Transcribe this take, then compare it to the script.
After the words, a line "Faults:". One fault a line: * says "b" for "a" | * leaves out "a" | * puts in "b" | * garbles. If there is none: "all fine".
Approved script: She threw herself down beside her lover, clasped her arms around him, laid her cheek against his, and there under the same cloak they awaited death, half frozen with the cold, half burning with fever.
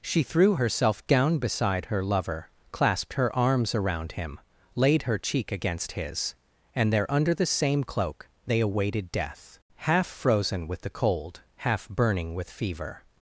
She threw herself down beside her lover, clasped her arms around him, laid her cheek against his, and there under the same cloak they awaited death, half frozen with the cold, half burning with fever.
Faults:
all fine